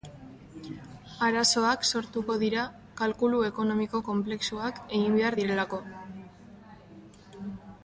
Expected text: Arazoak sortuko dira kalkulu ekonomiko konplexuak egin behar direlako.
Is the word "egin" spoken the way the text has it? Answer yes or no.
yes